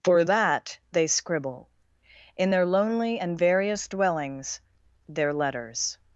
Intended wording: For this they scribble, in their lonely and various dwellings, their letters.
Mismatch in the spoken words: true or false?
true